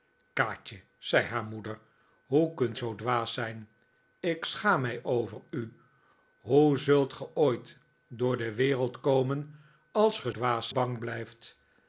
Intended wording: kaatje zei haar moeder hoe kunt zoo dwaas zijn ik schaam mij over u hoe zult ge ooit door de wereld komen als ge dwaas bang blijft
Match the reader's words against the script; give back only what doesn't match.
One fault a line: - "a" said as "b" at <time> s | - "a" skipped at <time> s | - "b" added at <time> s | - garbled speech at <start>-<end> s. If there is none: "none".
none